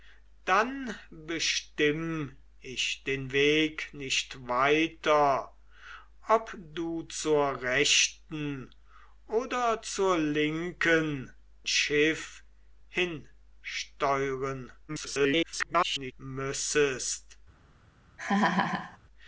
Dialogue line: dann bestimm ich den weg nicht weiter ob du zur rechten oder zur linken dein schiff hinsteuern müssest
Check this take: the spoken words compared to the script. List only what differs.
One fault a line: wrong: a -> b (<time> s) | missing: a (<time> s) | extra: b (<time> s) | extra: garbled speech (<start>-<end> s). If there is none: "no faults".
missing: dein (11.3 s)
extra: garbled speech (14.9-16.1 s)